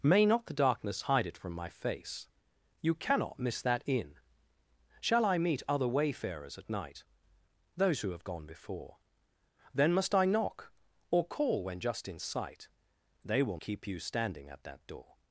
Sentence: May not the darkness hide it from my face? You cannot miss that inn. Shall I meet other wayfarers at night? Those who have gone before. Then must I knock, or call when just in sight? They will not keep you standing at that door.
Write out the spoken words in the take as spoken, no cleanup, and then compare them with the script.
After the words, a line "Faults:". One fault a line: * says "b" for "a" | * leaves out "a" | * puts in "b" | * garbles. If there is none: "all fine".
May not the darkness hide it from my face? You cannot miss that inn. Shall I meet other wayfarers at night? Those who have gone before. Then must I knock, or call when just in sight? They will keep you standing at that door.
Faults:
* leaves out "not"